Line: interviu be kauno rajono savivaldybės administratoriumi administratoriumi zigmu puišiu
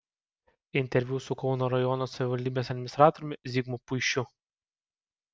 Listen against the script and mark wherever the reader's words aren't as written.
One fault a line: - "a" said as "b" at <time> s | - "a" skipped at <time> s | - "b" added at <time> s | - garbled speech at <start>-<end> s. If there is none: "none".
- "be" said as "su" at 1.2 s
- "administratoriumi" skipped at 3.4 s